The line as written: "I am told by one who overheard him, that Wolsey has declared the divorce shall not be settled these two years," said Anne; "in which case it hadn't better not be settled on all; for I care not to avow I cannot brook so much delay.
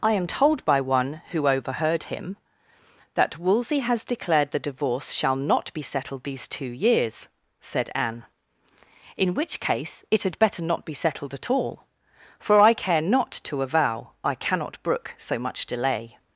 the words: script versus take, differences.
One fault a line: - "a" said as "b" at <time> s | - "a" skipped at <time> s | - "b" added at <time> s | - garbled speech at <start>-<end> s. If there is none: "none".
- "hadn't" said as "had" at 10.2 s
- "on" said as "at" at 11.3 s